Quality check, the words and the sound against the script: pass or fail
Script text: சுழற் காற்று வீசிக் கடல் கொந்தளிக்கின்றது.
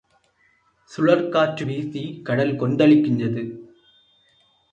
pass